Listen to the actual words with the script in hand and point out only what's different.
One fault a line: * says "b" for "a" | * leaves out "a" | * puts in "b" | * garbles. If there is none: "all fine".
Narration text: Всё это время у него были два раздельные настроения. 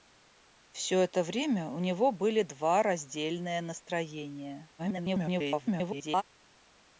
* garbles